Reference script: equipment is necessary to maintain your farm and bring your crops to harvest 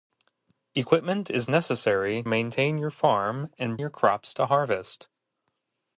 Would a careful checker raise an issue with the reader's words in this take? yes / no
yes